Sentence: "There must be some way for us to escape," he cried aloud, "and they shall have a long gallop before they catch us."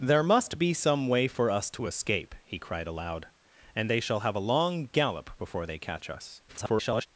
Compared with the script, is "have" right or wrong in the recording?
right